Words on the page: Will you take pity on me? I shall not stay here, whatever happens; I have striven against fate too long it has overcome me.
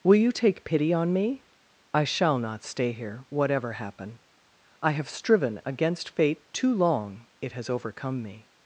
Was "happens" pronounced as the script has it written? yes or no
no